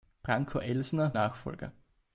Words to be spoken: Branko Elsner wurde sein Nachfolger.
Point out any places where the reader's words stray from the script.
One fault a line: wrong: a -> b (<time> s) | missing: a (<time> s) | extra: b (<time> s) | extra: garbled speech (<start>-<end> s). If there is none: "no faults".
missing: wurde sein (1.1 s)